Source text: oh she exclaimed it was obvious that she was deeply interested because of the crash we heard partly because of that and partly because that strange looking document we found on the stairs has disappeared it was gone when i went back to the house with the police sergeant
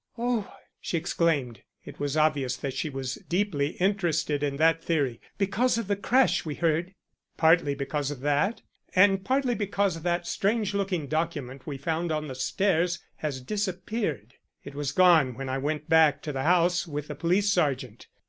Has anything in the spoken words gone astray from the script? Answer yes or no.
yes